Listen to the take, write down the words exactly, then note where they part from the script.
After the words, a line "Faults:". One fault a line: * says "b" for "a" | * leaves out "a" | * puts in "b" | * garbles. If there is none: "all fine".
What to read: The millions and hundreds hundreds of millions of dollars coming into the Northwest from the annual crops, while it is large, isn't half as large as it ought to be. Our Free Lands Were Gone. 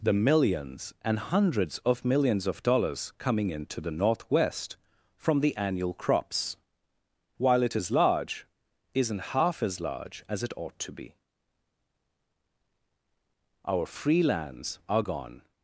The millions and hundreds of millions of dollars coming into the Northwest from the annual crops, while it is large, isn't half as large as it ought to be. Our Free Lands Are Gone.
Faults:
* leaves out "hundreds"
* says "Are" for "Were"